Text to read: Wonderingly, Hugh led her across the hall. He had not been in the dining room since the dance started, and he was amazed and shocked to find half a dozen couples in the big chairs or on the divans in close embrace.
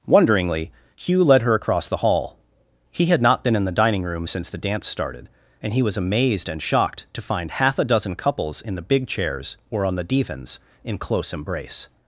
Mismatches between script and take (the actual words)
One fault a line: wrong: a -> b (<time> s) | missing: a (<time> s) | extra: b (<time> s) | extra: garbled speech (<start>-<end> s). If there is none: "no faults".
no faults